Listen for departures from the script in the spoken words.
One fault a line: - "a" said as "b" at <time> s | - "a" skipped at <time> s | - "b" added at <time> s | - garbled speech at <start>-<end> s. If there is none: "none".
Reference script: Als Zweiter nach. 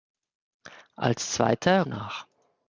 none